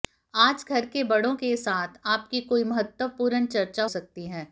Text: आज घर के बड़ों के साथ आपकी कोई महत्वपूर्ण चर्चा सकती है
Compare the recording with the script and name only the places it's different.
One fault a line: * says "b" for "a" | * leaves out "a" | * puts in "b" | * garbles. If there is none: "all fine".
all fine